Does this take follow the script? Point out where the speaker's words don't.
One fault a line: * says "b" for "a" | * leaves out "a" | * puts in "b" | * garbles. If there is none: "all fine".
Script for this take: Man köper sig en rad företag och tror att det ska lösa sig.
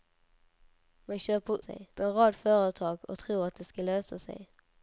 all fine